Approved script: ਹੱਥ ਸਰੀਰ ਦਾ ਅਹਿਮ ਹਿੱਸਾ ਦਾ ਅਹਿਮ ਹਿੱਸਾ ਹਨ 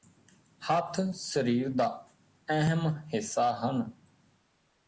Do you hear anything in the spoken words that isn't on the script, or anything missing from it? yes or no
yes